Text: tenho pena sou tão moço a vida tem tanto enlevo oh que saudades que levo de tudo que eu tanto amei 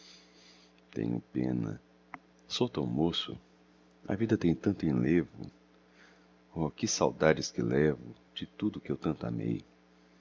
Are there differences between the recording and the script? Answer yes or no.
no